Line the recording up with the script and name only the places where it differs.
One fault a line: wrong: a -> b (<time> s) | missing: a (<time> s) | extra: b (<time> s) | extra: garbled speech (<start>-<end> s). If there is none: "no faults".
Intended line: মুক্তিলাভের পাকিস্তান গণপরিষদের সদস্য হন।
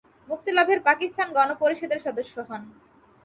no faults